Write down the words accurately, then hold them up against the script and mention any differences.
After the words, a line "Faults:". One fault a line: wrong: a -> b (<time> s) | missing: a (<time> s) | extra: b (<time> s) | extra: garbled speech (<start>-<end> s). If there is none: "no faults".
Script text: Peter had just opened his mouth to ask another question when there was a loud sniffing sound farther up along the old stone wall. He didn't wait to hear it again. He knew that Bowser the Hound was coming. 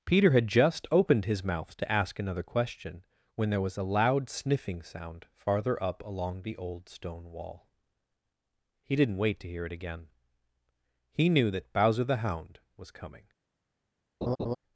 Peter had just opened his mouth to ask another question when there was a loud sniffing sound farther up along the old stone wall. He didn't wait to hear it again. He knew that Bowser the Hound was coming.
Faults:
no faults